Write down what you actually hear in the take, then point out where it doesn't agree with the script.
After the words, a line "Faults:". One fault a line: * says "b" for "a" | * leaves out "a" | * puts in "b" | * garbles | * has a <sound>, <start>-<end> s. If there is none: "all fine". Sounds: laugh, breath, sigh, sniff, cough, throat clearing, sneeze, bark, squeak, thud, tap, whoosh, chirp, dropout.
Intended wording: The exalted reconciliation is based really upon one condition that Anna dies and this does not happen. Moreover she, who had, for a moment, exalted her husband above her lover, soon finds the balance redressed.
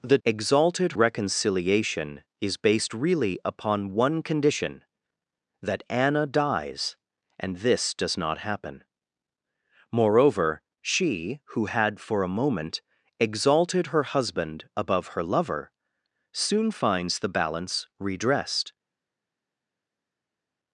The exalted reconciliation is based really upon one condition that Anna dies and this does not happen. Moreover she, who had, for a moment, exalted her husband above her lover, soon finds the balance redressed.
Faults:
all fine